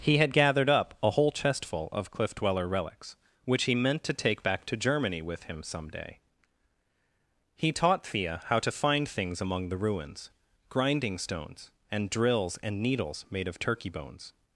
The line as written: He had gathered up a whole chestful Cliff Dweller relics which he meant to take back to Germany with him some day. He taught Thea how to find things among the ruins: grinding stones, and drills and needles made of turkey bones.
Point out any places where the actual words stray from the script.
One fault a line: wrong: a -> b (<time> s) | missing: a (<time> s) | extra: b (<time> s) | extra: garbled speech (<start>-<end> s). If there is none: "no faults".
extra: of (1.9 s)